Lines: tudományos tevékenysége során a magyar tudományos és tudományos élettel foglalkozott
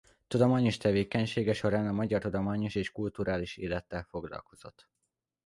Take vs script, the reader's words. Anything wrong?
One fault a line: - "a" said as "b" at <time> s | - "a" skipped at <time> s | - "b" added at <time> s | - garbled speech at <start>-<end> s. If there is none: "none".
- "tudományos" said as "kulturális" at 2.9 s